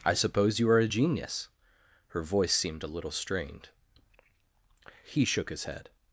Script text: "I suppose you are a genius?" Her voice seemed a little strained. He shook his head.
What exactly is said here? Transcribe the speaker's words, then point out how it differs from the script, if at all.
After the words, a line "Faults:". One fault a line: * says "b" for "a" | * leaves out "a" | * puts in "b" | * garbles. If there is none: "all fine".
"I suppose you are a genius?" Her voice seemed a little strained. He shook his head.
Faults:
all fine